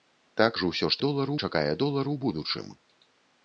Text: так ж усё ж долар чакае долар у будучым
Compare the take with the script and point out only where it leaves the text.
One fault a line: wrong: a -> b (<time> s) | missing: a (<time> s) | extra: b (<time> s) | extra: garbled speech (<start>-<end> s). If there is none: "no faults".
no faults